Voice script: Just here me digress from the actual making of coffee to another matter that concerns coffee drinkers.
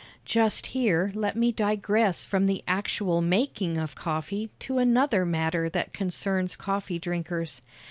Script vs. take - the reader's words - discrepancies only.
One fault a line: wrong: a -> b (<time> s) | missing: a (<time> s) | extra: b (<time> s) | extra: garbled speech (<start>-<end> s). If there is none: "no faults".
extra: let (1.1 s)